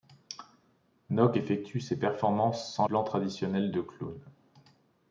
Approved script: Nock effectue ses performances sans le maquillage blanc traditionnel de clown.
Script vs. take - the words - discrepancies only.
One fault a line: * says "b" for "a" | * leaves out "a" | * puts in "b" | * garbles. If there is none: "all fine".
* leaves out "le maquillage"